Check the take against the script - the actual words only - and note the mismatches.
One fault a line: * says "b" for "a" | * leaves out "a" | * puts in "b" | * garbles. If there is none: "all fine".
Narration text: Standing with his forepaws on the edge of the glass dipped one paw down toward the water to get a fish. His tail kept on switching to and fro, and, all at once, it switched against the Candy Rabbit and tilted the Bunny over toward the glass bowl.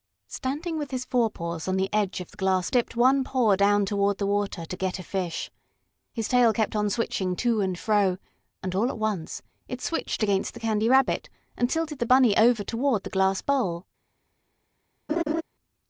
all fine